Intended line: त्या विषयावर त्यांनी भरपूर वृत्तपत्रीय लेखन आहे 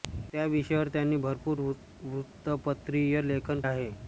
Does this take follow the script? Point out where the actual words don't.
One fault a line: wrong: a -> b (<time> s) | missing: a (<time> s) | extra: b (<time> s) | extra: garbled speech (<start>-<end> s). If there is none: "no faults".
no faults